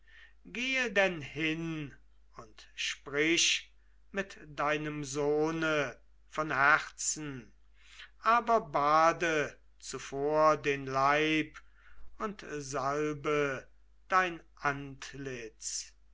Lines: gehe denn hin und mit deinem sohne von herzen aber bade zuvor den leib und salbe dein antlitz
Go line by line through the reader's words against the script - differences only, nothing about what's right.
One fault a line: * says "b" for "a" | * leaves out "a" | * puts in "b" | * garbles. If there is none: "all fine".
* puts in "sprich"